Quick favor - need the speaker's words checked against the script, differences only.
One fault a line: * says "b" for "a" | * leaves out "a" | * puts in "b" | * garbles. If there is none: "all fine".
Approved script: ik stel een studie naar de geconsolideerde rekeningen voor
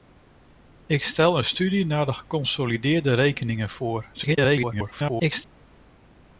* garbles